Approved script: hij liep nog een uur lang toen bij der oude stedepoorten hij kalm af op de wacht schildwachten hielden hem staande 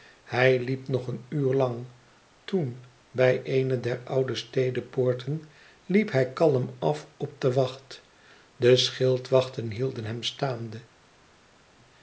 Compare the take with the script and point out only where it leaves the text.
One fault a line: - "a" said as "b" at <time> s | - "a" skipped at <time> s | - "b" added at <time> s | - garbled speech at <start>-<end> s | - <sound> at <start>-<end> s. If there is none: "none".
- "eene" added at 3.4 s
- "liep" added at 5.9 s
- "de" added at 8.6 s